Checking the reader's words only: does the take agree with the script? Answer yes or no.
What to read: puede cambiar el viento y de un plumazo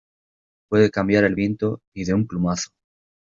yes